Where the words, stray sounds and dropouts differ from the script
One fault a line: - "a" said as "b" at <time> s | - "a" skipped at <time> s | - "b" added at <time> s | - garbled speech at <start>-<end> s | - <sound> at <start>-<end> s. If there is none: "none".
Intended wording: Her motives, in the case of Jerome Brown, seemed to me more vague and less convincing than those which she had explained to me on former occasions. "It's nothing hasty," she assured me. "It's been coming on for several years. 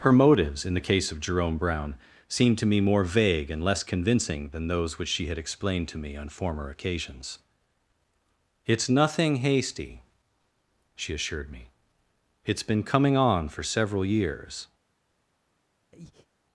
- breath at 15.9-16.3 s